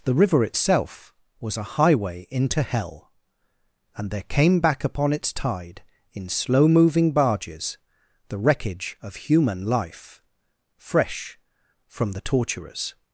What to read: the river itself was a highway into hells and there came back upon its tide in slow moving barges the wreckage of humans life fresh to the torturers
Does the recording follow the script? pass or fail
fail